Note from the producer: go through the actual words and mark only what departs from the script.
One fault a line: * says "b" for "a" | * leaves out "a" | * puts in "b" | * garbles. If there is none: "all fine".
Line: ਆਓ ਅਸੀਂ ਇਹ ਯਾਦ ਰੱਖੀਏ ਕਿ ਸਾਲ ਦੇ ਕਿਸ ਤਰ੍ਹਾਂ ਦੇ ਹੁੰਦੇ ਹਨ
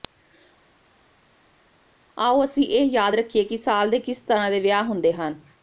* puts in "ਵਿਆਹ"